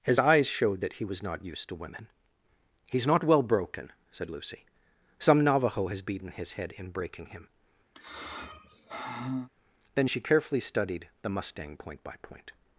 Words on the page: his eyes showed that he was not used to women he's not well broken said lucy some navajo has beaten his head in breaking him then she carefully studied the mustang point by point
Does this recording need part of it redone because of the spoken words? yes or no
no